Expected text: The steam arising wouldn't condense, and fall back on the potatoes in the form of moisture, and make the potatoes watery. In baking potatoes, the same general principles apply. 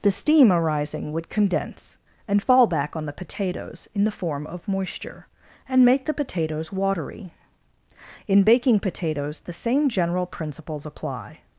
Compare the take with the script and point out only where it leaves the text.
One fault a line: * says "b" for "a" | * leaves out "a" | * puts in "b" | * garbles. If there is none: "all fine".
* says "would" for "wouldn't"